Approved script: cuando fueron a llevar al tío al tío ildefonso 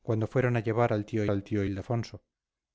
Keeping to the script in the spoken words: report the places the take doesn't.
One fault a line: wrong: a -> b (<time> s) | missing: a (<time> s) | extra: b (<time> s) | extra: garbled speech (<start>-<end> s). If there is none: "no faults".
no faults